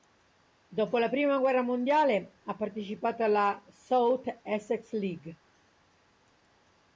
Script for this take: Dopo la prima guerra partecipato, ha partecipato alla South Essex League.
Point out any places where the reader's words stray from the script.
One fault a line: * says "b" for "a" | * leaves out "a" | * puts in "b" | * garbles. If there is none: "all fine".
* says "mondiale" for "partecipato"